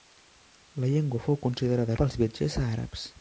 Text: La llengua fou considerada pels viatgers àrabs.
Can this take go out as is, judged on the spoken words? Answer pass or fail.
pass